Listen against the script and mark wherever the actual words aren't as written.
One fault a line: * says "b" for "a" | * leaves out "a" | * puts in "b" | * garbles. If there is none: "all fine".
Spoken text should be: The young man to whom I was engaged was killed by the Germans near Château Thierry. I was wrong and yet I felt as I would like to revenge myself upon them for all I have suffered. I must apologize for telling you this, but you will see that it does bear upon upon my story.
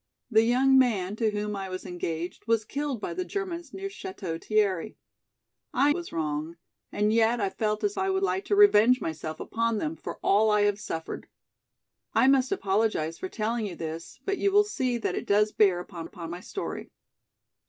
all fine